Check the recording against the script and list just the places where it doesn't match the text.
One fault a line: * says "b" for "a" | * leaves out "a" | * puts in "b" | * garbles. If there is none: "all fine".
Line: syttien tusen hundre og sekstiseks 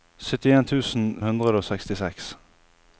all fine